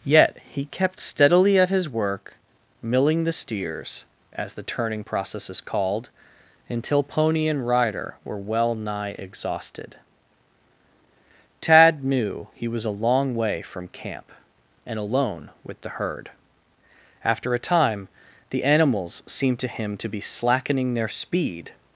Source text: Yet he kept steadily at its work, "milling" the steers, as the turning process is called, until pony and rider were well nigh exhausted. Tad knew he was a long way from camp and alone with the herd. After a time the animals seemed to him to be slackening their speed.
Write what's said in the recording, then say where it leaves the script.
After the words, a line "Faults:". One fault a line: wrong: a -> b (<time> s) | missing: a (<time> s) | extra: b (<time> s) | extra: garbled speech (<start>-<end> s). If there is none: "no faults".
Yet he kept steadily at his work, "milling" the steers, as the turning process is called, until pony and rider were well nigh exhausted. Tad knew he was a long way from camp and alone with the herd. After a time the animals seemed to him to be slackening their speed.
Faults:
wrong: its -> his (1.7 s)